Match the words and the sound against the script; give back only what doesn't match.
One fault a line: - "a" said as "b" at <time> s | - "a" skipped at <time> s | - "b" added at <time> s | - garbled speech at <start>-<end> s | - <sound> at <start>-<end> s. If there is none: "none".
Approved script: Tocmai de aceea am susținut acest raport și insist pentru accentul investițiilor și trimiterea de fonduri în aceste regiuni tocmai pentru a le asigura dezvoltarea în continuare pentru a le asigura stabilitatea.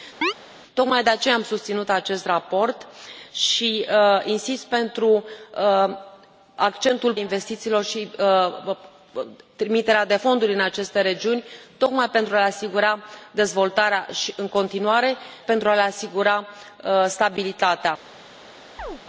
- chirp at 0.2-0.3 s
- chirp at 18.8-19.0 s